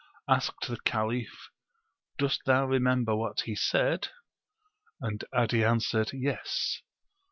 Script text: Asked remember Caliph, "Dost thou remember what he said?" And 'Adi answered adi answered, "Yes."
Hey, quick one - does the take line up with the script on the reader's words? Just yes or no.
no